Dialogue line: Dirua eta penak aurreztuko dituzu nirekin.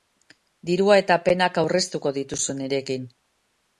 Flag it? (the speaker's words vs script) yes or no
no